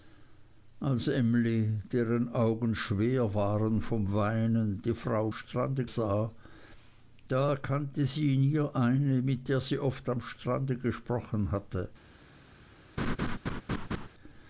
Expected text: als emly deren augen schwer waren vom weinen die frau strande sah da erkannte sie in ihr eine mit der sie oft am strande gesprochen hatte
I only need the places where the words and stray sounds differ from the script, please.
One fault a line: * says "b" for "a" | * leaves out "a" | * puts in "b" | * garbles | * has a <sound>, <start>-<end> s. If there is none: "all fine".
* has a laugh, 13.0-14.1 s